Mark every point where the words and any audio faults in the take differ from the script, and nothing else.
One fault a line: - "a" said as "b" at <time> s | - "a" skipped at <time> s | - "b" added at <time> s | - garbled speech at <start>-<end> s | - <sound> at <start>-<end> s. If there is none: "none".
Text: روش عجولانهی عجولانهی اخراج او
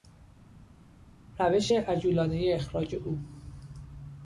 - "عجولانهی" skipped at 2.5 s